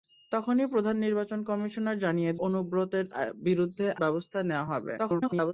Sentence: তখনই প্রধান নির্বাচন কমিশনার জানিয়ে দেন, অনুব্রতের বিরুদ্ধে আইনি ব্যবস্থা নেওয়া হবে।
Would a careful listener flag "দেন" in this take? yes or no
yes